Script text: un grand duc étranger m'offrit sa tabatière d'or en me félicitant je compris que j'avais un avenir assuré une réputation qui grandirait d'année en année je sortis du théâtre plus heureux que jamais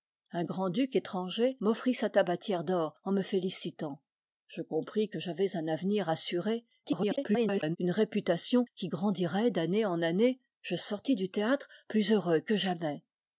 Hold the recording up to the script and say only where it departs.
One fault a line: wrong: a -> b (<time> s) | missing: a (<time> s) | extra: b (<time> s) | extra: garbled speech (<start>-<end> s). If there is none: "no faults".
extra: garbled speech (6.8-7.8 s)